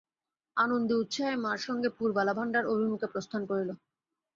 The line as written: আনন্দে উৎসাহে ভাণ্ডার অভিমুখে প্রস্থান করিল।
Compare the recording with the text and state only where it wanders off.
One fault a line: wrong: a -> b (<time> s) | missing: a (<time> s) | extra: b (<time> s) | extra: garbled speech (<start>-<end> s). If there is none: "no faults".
extra: মার সঙ্গে পুরবালা (1.4 s)